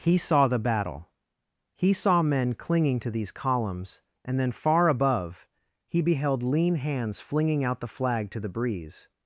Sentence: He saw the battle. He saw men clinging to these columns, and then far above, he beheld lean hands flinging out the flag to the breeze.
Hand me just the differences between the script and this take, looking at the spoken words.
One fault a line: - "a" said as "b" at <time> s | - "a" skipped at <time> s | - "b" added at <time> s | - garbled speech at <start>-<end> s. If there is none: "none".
none